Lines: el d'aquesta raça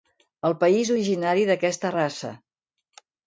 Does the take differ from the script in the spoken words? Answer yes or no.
yes